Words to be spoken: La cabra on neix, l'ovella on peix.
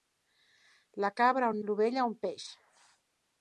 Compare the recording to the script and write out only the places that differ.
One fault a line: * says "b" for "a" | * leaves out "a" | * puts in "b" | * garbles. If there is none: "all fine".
* leaves out "neix"